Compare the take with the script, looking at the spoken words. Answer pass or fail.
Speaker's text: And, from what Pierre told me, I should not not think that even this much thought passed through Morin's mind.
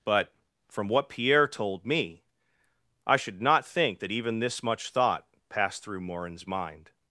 fail